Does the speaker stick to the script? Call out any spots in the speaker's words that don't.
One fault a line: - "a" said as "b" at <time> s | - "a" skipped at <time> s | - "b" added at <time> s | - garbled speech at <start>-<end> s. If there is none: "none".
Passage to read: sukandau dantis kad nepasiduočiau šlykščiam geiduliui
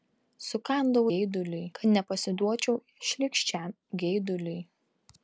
- "dantis" said as "geiduliui" at 1.1 s